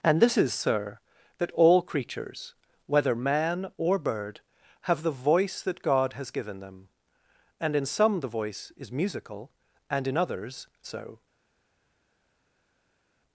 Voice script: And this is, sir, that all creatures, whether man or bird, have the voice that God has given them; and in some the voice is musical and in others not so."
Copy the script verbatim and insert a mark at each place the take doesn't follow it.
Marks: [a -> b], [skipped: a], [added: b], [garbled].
And this is, sir, that all creatures, whether man or bird, have the voice that God has given them; and in some the voice is musical and in others [skipped: not] so."